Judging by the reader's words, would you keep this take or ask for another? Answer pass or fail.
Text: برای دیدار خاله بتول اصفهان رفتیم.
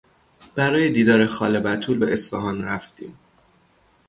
fail